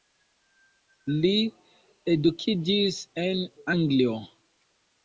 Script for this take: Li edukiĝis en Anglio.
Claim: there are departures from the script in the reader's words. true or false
false